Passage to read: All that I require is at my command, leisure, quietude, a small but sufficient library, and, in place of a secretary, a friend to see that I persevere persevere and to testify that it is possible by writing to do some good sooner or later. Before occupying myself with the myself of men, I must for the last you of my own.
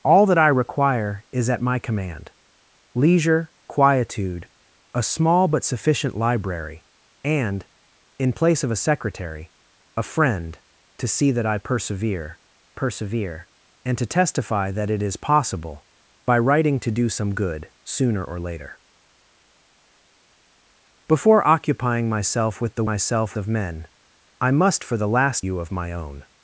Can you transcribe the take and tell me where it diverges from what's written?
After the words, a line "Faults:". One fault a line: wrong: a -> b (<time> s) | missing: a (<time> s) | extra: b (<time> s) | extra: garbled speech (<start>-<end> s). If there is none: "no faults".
All that I require is at my command, leisure, quietude, a small but sufficient library, and, in place of a secretary, a friend to see that I persevere persevere and to testify that it is possible by writing to do some good sooner or later. Before occupying myself with the myself of men, I must for the last you of my own.
Faults:
no faults